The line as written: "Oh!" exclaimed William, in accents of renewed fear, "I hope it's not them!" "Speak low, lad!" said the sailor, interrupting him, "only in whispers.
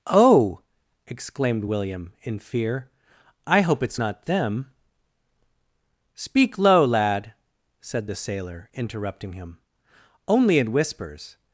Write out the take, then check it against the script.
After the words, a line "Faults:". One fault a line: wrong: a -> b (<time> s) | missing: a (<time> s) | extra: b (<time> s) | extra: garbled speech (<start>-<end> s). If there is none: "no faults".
"Oh!" exclaimed William, in fear, "I hope it's not them!" "Speak low, lad!" said the sailor, interrupting him, "only in whispers.
Faults:
missing: accents of renewed (2.4 s)